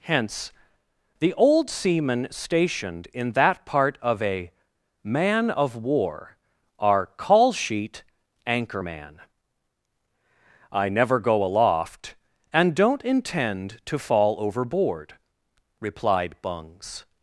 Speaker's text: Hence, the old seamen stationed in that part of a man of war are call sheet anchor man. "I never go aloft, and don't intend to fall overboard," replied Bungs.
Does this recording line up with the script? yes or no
yes